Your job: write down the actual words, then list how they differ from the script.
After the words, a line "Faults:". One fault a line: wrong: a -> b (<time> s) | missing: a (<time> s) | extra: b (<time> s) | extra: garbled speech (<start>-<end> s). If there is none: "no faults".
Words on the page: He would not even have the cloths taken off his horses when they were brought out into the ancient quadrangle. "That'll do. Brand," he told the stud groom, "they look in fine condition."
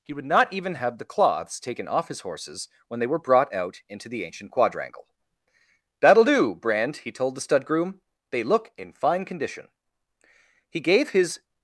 He would not even have the cloths taken off his horses when they were brought out into the ancient quadrangle. "That'll do. Brand," he told the stud groom, "they look in fine condition." He gave his
Faults:
extra: He gave his (10.7 s)